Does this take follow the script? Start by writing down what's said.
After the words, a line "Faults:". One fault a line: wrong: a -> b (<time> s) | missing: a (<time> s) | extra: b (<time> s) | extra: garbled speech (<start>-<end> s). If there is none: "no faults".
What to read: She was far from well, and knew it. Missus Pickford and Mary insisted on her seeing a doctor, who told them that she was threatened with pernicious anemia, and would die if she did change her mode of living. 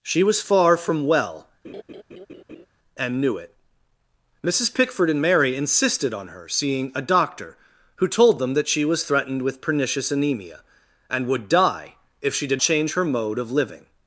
She was far from well, and knew it. Missus Pickford and Mary insisted on her seeing a doctor, who told them that she was threatened with pernicious anemia, and would die if she did change her mode of living.
Faults:
no faults